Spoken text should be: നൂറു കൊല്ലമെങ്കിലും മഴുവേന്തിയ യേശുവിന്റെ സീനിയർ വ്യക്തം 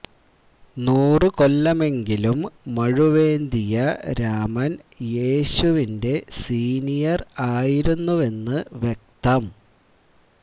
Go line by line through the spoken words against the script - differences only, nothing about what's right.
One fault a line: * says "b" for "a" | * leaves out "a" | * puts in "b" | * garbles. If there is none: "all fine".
* puts in "രാമൻ"
* puts in "ആയിരുന്നുവെന്ന്"